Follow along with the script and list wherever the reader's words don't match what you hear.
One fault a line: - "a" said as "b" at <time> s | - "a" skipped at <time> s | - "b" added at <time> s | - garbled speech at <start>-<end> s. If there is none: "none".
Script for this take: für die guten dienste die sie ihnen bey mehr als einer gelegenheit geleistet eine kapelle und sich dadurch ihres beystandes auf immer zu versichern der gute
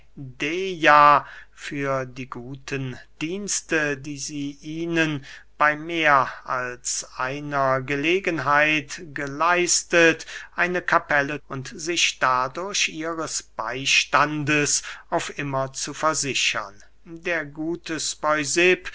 none